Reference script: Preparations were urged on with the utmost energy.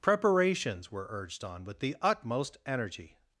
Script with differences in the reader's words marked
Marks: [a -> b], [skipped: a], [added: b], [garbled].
Preparations were urged on with the utmost energy.